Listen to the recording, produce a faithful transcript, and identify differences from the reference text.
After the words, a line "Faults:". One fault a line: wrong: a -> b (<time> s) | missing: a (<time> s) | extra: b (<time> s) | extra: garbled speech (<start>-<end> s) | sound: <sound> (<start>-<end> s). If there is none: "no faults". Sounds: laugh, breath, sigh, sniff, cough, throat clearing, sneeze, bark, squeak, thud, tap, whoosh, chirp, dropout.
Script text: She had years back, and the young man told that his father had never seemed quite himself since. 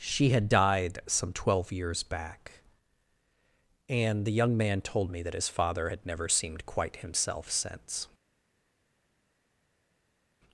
She had died some twelve years back, and the young man told me that his father had never seemed quite himself since.
Faults:
extra: died some twelve (0.5 s)
extra: me (5.1 s)